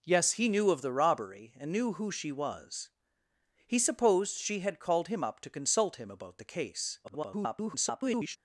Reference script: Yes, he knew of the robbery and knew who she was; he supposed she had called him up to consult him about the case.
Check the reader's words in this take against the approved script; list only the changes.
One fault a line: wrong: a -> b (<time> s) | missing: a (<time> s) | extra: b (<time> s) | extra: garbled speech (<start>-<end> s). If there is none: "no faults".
extra: garbled speech (7.0-8.4 s)